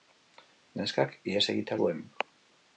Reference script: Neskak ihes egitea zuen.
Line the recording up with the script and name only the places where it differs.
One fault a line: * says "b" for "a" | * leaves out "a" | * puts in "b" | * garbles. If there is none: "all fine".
all fine